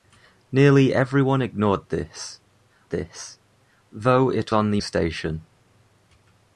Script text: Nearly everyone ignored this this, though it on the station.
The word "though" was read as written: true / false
true